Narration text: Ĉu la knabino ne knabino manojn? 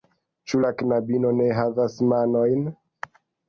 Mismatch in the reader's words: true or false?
true